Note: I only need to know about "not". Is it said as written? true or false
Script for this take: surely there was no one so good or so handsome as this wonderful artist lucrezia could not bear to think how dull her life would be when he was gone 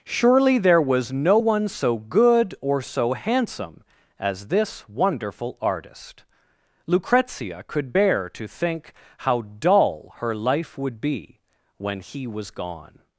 false